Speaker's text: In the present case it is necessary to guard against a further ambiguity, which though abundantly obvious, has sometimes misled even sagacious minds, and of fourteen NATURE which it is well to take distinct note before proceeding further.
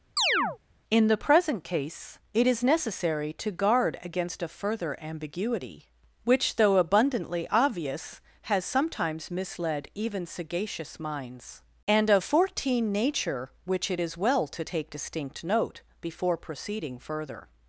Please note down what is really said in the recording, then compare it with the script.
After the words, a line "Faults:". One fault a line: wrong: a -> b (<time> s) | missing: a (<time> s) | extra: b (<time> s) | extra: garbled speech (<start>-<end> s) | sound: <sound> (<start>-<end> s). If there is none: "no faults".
In the present case it is necessary to guard against a further ambiguity, which though abundantly obvious, has sometimes misled even sagacious minds, and of fourteen NATURE which it is well to take distinct note before proceeding further.
Faults:
sound: chirp (0.2-0.6 s)